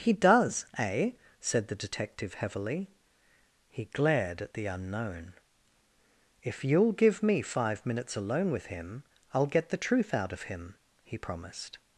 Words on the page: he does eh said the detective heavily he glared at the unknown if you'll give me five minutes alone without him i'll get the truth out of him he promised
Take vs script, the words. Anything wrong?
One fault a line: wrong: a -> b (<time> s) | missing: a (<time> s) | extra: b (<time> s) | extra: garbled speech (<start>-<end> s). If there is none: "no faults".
wrong: without -> with (8.5 s)